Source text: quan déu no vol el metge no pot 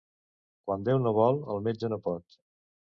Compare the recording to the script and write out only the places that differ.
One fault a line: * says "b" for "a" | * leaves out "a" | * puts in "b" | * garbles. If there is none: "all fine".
all fine